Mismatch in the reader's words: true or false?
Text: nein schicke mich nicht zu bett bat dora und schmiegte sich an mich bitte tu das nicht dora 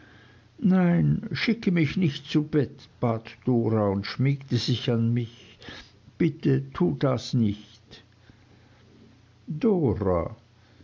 false